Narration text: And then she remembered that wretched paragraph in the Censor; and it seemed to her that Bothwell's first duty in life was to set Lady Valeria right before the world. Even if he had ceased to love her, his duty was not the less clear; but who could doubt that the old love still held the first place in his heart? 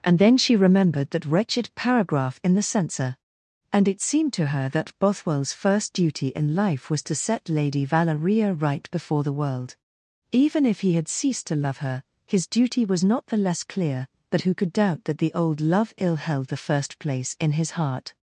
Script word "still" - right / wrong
wrong